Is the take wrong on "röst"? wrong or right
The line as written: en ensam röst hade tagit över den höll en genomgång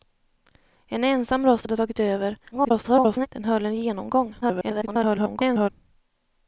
right